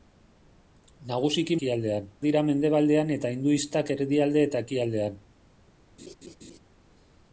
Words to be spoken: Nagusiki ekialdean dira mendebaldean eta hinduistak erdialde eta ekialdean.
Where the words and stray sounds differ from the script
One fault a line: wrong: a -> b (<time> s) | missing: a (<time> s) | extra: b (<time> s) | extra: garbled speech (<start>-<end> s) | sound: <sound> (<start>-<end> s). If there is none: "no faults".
sound: laugh (6.0-6.6 s)